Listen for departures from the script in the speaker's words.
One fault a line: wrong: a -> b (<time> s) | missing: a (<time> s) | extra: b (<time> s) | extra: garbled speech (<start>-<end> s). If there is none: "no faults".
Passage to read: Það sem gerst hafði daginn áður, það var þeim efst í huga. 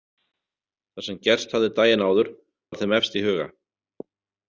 missing: það (2.3 s)